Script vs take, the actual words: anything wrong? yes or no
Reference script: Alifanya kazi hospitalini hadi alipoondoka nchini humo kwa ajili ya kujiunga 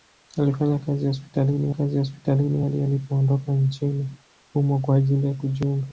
yes